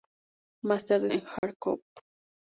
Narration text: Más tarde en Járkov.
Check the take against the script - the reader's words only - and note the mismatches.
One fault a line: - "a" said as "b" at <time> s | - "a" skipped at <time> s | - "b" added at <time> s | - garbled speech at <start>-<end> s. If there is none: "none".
none